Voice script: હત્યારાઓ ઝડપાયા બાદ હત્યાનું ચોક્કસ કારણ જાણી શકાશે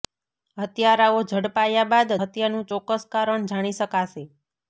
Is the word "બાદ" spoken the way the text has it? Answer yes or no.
yes